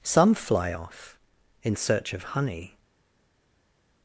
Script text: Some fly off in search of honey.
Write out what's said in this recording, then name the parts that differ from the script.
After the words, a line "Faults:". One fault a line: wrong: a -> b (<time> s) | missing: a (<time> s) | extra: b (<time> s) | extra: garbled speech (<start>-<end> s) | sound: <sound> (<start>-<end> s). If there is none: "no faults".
Some fly off in search of honey.
Faults:
no faults